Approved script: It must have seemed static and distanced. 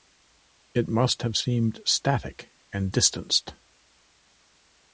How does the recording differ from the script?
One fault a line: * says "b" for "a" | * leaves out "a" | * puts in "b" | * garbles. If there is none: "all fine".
all fine